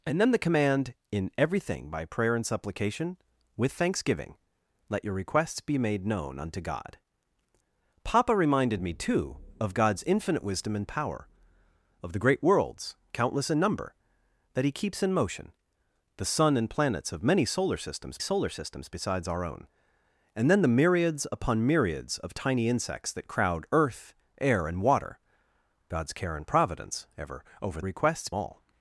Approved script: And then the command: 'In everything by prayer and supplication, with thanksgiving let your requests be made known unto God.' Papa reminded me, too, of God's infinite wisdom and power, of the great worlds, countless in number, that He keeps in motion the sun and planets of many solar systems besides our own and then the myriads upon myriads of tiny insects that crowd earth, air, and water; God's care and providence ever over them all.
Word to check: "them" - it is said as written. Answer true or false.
false